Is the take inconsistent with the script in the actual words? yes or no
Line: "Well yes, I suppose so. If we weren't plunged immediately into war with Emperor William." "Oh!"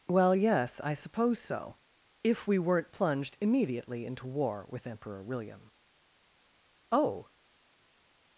no